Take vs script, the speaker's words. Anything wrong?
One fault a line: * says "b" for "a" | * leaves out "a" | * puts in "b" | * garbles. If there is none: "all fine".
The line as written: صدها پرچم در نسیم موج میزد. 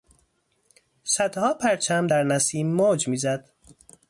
all fine